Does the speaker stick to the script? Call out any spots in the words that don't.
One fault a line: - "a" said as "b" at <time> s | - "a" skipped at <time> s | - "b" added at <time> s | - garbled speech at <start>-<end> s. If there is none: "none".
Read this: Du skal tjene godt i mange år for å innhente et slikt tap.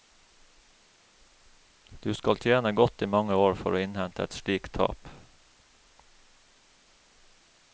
none